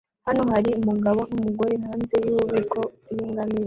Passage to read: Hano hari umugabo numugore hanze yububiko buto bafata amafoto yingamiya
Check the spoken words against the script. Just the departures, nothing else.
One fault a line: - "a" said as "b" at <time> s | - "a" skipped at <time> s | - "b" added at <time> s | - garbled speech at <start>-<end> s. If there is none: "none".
- "buto bafata amafoto" skipped at 2.8 s